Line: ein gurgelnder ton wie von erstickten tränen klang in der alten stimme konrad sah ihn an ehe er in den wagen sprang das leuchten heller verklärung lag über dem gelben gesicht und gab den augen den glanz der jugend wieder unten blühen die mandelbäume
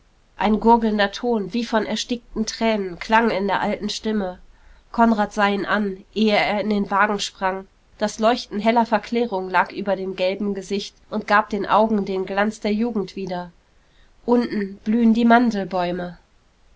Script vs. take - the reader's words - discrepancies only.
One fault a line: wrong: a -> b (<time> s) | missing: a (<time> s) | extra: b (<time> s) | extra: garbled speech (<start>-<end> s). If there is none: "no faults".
no faults